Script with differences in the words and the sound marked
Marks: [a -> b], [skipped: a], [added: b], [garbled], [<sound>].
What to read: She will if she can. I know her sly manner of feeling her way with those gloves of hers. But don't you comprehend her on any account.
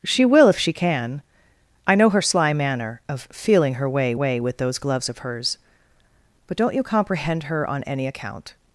She will if she can. I know her sly manner of feeling her way [added: way] with those gloves of hers. But don't you comprehend her on any account.